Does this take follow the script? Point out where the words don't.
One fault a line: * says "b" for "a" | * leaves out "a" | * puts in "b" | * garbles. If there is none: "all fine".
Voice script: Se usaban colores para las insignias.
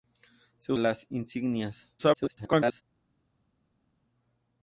* leaves out "usaban colores para"
* garbles